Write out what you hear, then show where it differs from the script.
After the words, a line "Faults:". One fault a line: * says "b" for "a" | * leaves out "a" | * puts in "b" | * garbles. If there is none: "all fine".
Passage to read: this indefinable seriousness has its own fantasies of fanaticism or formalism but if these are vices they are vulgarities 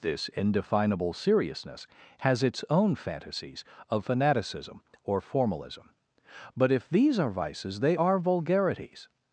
this indefinable seriousness has its own fantasies of fanaticism or formalism but if these are vices they are vulgarities
Faults:
all fine